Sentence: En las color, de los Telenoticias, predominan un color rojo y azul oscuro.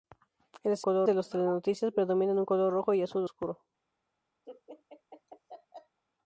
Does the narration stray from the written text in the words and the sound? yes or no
yes